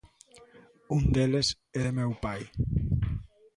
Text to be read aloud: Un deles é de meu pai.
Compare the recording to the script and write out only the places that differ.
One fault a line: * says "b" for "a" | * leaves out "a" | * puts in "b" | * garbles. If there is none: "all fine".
all fine